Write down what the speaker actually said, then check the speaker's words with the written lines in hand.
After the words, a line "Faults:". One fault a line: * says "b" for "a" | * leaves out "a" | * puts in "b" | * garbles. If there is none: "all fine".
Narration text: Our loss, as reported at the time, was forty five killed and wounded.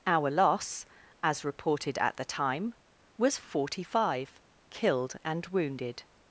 Our loss, as reported at the time, was forty five killed and wounded.
Faults:
all fine